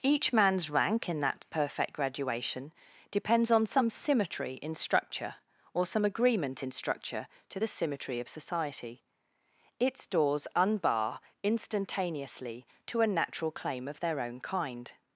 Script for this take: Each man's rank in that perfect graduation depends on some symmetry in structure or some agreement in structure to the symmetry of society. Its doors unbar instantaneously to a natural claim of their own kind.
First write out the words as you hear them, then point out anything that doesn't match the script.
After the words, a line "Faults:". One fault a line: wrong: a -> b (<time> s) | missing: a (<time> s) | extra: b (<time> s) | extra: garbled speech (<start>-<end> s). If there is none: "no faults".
Each man's rank in that perfect graduation depends on some symmetry in structure or some agreement in structure to the symmetry of society. Its doors unbar instantaneously to a natural claim of their own kind.
Faults:
no faults